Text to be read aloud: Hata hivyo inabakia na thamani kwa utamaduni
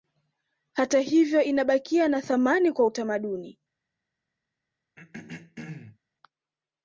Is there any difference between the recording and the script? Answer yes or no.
no